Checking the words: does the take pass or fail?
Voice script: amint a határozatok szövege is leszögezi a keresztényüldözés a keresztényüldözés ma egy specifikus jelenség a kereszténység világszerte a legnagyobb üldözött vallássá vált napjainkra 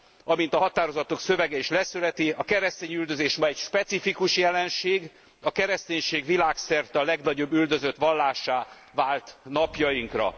fail